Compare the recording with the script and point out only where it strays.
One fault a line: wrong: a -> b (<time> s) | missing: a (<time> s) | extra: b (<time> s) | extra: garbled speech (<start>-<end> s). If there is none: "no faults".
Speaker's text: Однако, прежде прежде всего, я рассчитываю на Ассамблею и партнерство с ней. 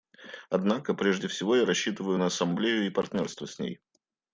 missing: прежде (1.3 s)